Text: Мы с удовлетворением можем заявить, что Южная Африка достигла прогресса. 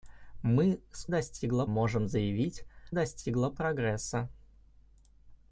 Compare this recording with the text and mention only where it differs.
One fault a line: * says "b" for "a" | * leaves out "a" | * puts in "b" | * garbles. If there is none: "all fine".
* says "достигла" for "удовлетворением"
* leaves out "что Южная Африка"